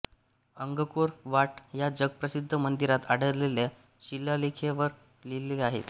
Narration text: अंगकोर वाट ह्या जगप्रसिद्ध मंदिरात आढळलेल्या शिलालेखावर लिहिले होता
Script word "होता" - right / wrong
wrong